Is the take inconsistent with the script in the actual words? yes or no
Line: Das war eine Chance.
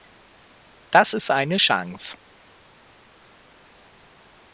yes